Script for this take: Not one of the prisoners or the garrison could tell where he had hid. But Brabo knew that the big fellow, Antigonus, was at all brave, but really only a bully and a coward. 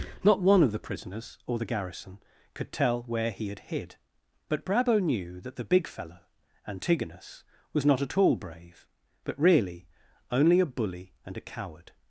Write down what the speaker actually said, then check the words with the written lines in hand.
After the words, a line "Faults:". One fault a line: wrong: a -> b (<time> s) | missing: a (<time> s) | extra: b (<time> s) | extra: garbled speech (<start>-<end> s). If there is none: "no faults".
Not one of the prisoners or the garrison could tell where he had hid. But Brabo knew that the big fellow, Antigonus, was not at all brave, but really only a bully and a coward.
Faults:
extra: not (7.8 s)